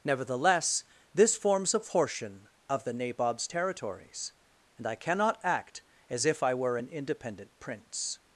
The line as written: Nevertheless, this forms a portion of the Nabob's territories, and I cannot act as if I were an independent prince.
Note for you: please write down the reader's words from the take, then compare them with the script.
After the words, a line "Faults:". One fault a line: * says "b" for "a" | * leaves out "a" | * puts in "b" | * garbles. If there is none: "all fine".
Nevertheless, this forms a portion of the Nabob's territories, and I cannot act as if I were an independent prince.
Faults:
all fine